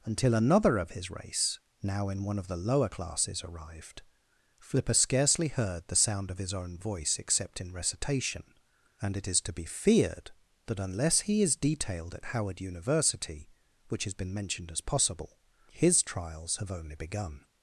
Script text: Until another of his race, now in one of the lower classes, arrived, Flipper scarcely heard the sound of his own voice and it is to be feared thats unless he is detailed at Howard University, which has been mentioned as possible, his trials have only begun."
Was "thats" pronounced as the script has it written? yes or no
no